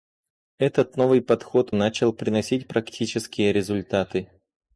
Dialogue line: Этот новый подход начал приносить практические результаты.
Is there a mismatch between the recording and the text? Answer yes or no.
no